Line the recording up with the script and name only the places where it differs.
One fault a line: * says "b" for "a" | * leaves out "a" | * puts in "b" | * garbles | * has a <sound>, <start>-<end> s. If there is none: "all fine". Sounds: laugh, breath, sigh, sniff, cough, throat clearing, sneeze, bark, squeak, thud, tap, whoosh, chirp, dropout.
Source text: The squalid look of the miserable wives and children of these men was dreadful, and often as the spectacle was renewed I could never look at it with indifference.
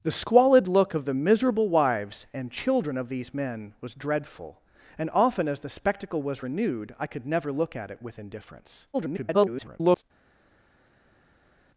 * garbles